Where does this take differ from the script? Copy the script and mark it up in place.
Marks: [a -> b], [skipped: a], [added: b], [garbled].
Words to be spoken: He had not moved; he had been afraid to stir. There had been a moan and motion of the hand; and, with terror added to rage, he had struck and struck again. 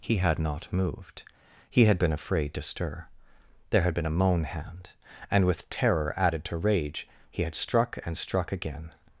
He had not moved; he had been afraid to stir. There had been a moan [skipped: and motion of the] hand; and, with terror added to rage, he had struck and struck again.